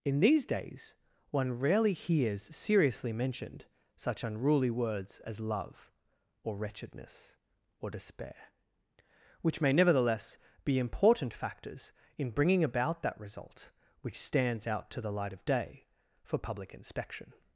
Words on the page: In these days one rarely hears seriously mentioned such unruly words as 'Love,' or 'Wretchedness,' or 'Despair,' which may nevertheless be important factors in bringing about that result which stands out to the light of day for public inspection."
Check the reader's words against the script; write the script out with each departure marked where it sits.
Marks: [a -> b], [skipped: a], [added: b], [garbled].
In these days one rarely hears seriously mentioned such unruly words as 'Love,' or 'Wretchedness,' or 'Despair,' which may nevertheless be important factors in bringing about that result which stands out to the light of day for public inspection."